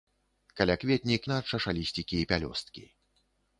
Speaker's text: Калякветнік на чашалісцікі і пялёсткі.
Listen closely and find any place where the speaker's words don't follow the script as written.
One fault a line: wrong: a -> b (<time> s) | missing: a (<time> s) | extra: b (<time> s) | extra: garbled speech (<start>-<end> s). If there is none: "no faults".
no faults